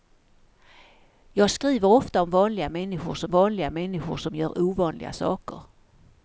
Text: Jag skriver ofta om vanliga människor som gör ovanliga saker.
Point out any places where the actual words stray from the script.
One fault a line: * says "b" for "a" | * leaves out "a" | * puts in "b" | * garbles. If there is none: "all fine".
* puts in "vanliga människor som"